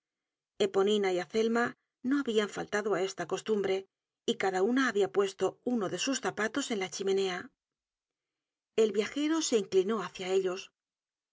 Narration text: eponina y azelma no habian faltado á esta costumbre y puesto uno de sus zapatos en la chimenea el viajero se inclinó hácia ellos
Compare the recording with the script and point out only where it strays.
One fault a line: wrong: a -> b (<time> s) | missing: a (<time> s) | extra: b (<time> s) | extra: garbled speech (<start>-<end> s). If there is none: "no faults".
extra: cada una habia (4.4 s)